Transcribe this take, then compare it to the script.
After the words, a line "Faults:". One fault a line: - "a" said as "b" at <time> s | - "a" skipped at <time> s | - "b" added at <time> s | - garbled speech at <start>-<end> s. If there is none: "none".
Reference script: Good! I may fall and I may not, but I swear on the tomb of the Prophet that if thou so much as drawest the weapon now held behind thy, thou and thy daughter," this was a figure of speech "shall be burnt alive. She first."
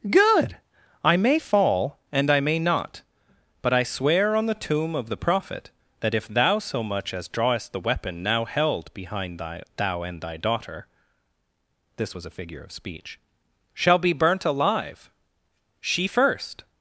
Good! I may fall and I may not, but I swear on the tomb of the Prophet that if thou so much as drawest the weapon now held behind thy, thou and thy daughter," this was a figure of speech "shall be burnt alive. She first."
Faults:
none